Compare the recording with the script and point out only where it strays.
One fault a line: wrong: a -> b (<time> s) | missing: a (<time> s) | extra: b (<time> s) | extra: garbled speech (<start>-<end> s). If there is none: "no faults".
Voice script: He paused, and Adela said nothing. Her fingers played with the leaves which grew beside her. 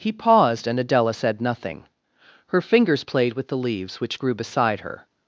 no faults